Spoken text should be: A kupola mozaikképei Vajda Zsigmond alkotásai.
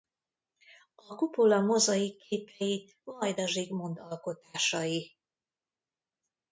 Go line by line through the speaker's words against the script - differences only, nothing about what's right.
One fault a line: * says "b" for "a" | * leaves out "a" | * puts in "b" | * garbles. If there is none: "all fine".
all fine